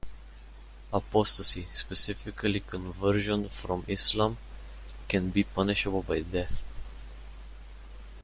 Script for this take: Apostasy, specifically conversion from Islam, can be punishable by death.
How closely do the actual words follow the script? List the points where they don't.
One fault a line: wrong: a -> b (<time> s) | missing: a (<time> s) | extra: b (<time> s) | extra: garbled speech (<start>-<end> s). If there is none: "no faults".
no faults